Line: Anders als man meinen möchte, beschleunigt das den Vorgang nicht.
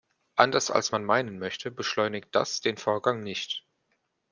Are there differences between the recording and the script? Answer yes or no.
no